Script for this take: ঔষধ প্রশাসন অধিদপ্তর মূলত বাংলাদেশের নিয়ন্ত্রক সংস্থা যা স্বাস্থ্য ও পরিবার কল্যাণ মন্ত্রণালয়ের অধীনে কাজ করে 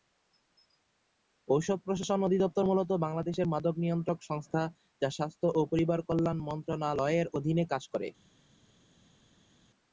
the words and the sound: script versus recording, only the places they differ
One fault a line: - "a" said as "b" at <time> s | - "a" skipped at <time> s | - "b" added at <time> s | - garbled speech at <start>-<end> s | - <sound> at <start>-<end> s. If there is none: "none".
- "মাদক" added at 3.5 s